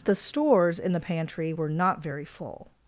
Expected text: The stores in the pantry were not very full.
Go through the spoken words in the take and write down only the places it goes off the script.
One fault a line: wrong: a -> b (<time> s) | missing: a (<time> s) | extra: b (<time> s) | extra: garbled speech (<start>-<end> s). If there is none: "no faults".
no faults